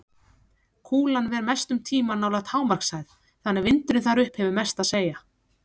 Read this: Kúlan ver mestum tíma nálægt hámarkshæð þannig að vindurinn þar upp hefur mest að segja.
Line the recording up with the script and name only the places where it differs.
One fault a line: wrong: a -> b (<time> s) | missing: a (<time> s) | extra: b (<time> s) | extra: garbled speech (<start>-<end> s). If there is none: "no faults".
no faults